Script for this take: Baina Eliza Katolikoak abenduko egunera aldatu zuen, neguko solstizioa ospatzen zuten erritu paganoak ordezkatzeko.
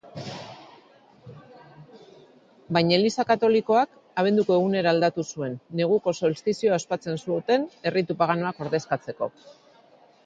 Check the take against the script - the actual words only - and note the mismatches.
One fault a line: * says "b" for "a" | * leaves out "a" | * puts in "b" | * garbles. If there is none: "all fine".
all fine